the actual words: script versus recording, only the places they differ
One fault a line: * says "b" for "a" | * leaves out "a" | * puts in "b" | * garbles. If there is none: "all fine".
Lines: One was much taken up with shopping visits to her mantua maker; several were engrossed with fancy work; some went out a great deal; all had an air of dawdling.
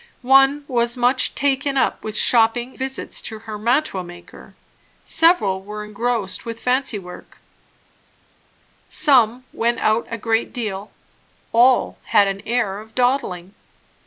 all fine